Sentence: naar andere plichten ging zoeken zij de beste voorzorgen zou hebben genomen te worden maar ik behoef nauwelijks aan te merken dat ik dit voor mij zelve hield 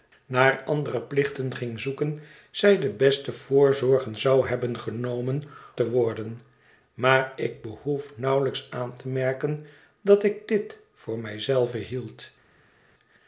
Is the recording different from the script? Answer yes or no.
no